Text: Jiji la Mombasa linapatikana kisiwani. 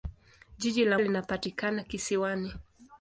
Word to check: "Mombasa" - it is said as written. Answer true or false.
false